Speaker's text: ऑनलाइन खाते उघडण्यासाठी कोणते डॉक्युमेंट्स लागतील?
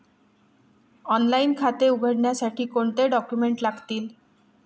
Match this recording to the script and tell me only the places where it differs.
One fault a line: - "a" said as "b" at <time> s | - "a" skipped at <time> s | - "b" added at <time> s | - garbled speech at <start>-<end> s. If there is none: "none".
none